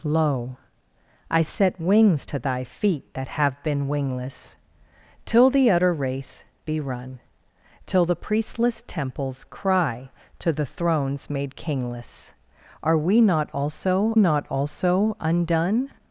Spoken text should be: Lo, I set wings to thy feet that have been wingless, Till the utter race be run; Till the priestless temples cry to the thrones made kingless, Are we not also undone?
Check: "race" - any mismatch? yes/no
no